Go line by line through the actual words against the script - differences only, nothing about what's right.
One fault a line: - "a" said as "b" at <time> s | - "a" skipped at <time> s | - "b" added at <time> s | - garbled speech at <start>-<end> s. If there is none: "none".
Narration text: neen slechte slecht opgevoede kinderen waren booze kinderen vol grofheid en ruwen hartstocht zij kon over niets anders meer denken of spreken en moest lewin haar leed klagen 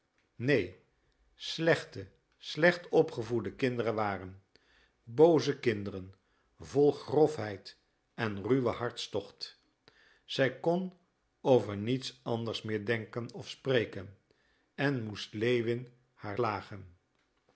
- "leed" skipped at 16.4 s